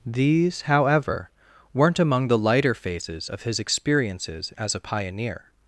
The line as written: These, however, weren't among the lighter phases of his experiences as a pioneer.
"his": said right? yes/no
yes